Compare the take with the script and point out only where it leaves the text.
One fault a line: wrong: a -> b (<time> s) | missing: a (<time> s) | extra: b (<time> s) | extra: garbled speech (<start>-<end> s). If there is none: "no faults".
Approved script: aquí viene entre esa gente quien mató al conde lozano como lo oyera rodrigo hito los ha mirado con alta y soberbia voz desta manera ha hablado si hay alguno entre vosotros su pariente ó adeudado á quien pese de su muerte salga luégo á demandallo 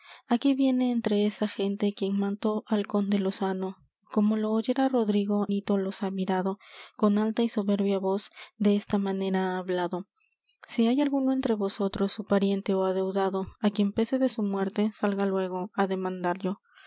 no faults